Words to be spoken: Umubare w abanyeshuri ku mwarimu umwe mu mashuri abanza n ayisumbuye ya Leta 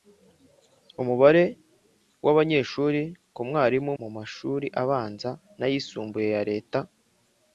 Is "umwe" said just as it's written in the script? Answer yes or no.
no